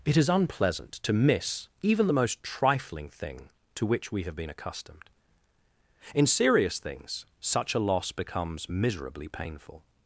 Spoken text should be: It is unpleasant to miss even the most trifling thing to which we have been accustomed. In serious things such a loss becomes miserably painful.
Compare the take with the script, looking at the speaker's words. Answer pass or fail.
pass